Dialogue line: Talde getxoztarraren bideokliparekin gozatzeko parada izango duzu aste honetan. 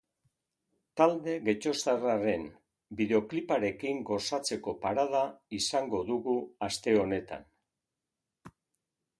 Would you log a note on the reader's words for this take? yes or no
yes